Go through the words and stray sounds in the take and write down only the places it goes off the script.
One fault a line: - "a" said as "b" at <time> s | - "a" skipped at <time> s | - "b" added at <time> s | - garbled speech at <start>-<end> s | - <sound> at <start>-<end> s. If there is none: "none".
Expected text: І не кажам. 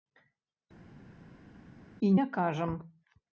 none